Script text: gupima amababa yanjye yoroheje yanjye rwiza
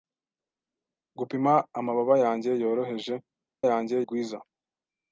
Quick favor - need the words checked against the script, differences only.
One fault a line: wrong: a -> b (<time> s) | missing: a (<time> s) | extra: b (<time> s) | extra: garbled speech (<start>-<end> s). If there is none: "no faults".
no faults